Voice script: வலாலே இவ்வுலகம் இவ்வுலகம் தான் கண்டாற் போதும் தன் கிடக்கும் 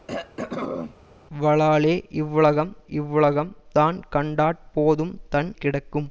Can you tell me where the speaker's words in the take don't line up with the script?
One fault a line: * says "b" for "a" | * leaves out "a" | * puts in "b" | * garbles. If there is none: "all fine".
all fine